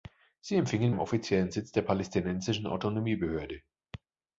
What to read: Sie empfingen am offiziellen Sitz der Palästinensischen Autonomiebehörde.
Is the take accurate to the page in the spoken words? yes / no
yes